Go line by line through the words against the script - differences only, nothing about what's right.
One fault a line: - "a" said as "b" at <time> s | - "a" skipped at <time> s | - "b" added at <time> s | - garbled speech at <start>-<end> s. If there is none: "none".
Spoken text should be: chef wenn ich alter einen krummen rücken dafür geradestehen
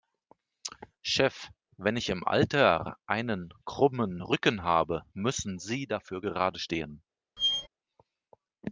- "im" added at 2.1 s
- "habe müssen sie" added at 4.6 s